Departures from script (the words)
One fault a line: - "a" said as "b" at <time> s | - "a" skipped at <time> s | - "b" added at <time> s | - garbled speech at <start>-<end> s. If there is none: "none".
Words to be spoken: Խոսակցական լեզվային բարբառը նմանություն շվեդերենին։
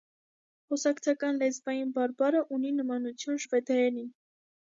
- "ունի" added at 2.6 s